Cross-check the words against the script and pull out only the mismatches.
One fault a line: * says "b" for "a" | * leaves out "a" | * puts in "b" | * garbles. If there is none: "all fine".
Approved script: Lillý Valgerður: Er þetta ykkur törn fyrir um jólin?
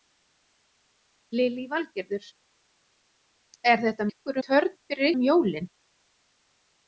all fine